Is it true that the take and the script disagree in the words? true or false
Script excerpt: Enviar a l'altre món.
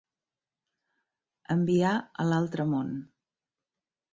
false